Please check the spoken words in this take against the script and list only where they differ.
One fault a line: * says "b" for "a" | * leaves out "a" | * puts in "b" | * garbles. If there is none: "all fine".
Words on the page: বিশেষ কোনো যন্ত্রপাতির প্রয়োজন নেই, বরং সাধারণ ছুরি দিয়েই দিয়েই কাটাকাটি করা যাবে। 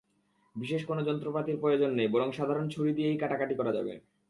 * leaves out "দিয়েই"